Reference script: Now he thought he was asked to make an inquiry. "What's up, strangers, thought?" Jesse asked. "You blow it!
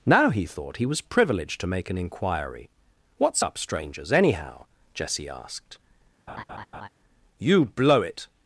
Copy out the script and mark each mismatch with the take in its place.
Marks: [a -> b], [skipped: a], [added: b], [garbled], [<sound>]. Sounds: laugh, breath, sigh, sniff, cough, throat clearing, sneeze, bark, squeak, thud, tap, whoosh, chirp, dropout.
Now he thought he was [asked -> privileged] to make an inquiry. "What's up, strangers, [thought?" -> anyhow] Jesse asked. [laugh] "You blow it!